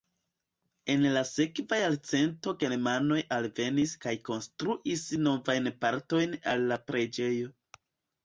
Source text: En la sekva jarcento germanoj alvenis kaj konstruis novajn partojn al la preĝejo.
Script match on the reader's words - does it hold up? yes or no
yes